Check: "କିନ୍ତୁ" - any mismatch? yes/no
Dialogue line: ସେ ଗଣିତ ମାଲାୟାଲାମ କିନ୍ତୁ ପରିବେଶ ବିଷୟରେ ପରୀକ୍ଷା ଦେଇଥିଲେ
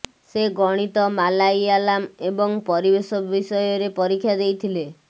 yes